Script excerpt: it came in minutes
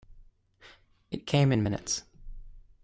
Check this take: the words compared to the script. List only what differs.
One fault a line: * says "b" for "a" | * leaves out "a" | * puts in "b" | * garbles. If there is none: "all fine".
all fine